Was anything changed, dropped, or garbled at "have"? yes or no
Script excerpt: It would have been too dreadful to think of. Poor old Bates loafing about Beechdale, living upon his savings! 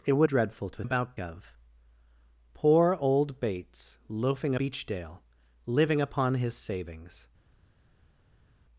yes